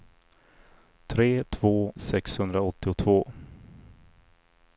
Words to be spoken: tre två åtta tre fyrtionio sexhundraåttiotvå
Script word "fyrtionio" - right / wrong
wrong